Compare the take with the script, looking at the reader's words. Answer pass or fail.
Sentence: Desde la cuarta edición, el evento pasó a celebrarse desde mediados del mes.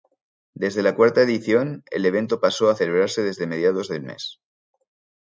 pass